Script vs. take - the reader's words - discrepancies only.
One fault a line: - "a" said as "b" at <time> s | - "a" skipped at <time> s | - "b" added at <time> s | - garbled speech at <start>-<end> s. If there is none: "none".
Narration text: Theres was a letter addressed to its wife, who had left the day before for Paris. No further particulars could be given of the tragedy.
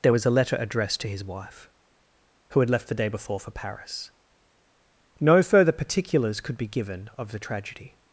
- "Theres" said as "There" at 0.0 s
- "its" said as "his" at 1.1 s